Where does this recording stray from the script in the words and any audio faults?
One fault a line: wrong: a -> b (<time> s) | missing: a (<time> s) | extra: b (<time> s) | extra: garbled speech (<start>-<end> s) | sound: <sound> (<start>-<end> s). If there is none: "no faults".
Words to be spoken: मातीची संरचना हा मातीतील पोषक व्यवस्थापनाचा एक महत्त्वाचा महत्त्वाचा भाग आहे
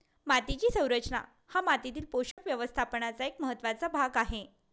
sound: dropout (2.3-2.4 s)
missing: महत्त्वाचा (3.9 s)